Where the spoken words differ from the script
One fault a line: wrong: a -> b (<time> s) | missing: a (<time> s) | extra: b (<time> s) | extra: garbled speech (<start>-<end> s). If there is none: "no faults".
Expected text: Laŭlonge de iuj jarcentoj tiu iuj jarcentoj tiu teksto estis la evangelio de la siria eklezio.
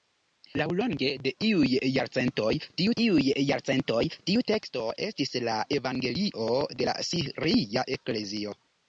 no faults